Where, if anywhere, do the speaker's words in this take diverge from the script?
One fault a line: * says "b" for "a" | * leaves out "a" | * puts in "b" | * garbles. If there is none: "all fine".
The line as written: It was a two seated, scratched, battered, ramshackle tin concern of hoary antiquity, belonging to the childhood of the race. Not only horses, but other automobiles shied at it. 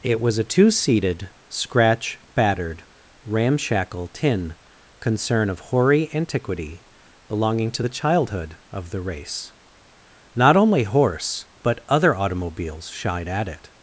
* says "scratch" for "scratched"
* says "horse" for "horses"